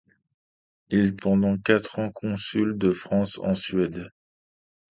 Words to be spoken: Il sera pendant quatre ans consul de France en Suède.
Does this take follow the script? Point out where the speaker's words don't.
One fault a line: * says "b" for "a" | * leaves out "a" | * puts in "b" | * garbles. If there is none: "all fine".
* leaves out "sera"